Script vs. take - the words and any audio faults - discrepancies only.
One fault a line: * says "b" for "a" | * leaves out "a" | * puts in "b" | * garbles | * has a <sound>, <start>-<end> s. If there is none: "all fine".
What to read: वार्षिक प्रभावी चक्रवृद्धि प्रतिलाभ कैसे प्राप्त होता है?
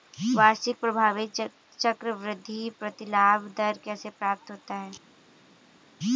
* puts in "दर"